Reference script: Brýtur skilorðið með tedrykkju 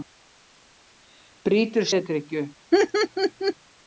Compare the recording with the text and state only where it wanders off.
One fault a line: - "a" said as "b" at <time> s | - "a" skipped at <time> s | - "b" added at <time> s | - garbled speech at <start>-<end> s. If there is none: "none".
- "skilorðið með" skipped at 1.9 s